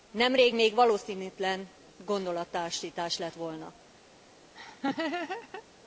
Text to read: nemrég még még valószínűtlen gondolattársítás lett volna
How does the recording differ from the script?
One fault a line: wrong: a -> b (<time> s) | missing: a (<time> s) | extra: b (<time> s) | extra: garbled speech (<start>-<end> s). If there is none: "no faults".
missing: még (0.7 s)